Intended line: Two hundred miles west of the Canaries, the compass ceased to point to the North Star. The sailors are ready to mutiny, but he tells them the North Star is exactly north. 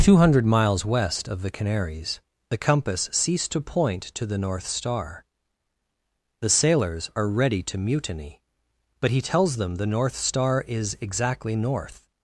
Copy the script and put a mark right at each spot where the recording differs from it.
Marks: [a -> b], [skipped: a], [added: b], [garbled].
Two hundred miles west of the Canaries, the compass ceased to point to the North Star. The sailors are ready to mutiny, but he tells them the North Star is exactly north.